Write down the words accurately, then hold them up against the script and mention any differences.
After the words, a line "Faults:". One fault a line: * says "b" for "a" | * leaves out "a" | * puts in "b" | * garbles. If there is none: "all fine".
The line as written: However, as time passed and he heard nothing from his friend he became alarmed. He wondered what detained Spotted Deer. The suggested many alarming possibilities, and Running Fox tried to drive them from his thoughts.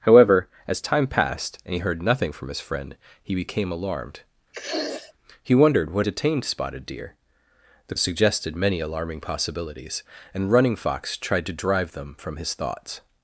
However, as time passed and he heard nothing from his friend he became alarmed. He wondered what detained Spotted Deer. The suggested many alarming possibilities, and Running Fox tried to drive them from his thoughts.
Faults:
all fine